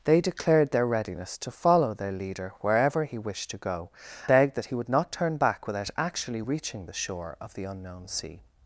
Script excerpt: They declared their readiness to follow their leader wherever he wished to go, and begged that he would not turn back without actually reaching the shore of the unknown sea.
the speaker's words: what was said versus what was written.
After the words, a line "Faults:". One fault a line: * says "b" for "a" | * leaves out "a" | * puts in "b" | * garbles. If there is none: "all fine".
They declared their readiness to follow their leader wherever he wished to go, begged that he would not turn back without actually reaching the shore of the unknown sea.
Faults:
* leaves out "and"